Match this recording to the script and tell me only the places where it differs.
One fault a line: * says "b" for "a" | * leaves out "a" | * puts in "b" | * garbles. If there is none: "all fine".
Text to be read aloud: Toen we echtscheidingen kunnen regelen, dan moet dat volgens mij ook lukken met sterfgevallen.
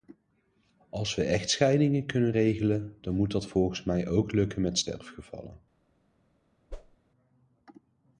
* says "Als" for "Toen"